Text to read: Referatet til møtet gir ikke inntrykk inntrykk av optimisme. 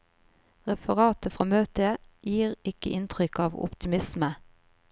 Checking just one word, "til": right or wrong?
wrong